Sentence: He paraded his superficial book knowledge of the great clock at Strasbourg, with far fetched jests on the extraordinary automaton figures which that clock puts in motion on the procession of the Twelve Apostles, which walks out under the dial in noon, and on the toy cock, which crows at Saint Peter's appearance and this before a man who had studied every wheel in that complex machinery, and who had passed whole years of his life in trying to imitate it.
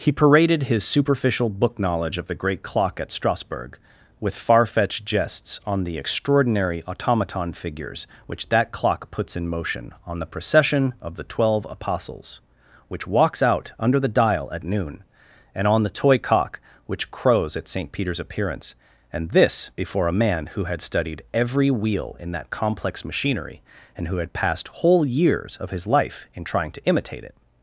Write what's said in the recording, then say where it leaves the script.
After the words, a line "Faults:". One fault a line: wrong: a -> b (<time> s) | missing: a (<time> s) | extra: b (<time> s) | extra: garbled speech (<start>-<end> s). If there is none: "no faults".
He paraded his superficial book knowledge of the great clock at Strasbourg, with far fetched jests on the extraordinary automaton figures which that clock puts in motion on the procession of the Twelve Apostles, which walks out under the dial at noon, and on the toy cock, which crows at Saint Peter's appearance and this before a man who had studied every wheel in that complex machinery, and who had passed whole years of his life in trying to imitate it.
Faults:
wrong: in -> at (14.5 s)